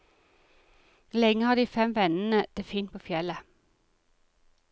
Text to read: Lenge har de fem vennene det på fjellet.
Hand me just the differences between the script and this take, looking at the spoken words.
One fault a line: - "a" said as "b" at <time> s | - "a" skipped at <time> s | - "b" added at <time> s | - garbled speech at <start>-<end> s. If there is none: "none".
- "fint" added at 2.6 s